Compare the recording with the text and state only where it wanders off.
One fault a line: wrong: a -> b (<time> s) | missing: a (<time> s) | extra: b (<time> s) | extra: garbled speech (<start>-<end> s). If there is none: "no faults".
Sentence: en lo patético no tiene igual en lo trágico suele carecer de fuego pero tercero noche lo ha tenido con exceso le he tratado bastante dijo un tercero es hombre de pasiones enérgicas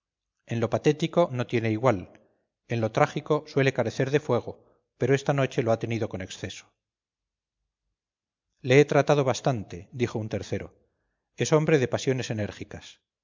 wrong: tercero -> esta (5.1 s)